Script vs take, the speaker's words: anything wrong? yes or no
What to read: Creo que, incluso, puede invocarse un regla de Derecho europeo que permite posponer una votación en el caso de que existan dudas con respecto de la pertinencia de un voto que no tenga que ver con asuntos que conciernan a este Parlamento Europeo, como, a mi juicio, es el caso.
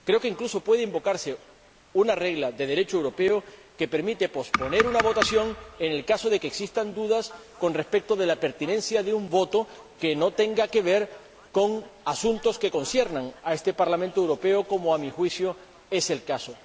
yes